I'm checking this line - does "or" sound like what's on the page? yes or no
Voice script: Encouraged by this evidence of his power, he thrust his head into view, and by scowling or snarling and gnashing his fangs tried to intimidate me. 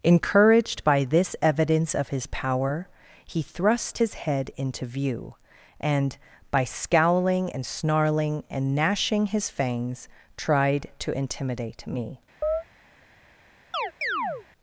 no